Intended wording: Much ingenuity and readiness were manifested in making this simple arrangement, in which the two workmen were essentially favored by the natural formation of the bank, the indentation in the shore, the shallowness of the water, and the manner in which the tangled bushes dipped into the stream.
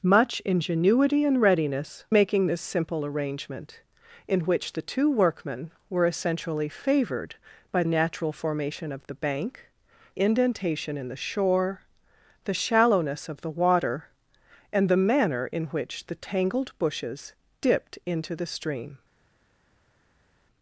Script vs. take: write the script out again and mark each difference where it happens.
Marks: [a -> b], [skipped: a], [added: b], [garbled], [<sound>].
Much ingenuity and readiness [skipped: were manifested in] making this simple arrangement, in which the two workmen were essentially favored by [skipped: the] natural formation of the bank, [skipped: the] indentation in the shore, the shallowness of the water, and the manner in which the tangled bushes dipped into the stream.